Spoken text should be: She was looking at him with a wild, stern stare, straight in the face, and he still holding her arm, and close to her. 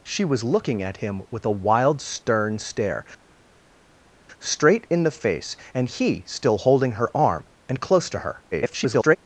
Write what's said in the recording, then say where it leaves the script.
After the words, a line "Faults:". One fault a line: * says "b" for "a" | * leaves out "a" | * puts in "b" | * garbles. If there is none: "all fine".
She was looking at him with a wild, stern stare, straight in the face, and he still holding her arm, and close to her. [garbled]
Faults:
* garbles